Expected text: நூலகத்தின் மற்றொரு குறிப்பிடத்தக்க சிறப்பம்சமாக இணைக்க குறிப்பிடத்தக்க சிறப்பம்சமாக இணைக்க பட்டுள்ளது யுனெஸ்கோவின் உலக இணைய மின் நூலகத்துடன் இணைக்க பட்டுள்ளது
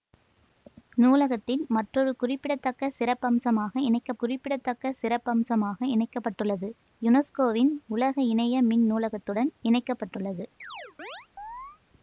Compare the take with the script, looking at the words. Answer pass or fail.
pass